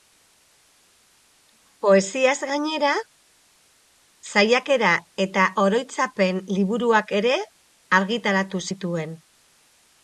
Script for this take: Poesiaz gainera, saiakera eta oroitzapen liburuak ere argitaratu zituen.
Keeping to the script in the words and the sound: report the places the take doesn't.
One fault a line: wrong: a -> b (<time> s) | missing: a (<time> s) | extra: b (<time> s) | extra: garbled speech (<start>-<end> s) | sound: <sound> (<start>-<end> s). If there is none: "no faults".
no faults